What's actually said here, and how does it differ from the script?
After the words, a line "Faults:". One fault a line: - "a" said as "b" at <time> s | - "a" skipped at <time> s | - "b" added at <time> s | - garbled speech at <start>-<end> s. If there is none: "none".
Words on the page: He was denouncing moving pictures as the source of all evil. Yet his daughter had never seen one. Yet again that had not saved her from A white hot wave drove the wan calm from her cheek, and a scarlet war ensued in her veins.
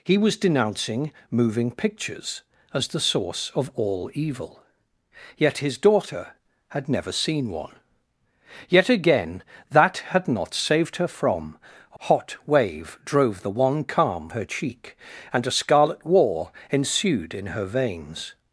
He was denouncing moving pictures as the source of all evil. Yet his daughter had never seen one. Yet again that had not saved her from A hot wave drove the wan calm her cheek, and a scarlet war ensued in her veins.
Faults:
- "white" skipped at 12.0 s
- "from" skipped at 14.3 s